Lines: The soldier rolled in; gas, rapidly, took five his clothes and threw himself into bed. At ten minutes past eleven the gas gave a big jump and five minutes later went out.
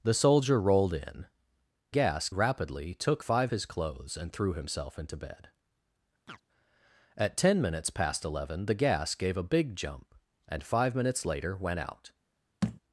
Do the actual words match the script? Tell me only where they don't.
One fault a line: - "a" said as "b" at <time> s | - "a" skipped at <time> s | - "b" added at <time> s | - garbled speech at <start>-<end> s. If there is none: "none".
none